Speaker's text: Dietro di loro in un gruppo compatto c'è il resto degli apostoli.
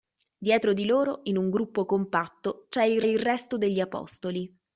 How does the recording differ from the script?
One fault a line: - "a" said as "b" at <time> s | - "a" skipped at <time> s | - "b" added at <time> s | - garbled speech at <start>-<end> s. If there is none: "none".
- "il" added at 3.0 s